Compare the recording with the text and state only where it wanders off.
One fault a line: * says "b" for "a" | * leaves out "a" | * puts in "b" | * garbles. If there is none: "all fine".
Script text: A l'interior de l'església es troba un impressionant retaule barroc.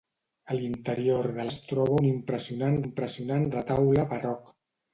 * leaves out "l'església"
* puts in "impressionant"